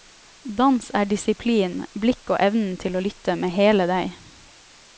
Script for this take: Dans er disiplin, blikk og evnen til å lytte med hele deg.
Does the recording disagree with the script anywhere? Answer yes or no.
no